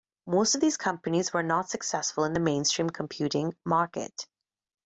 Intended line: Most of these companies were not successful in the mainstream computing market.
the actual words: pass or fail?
pass